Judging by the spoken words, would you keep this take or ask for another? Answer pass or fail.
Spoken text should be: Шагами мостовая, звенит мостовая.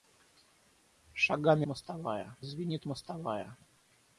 pass